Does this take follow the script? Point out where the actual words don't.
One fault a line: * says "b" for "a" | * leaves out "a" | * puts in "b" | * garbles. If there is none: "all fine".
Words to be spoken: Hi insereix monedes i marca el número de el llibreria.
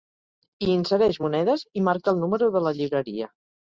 * says "la" for "el"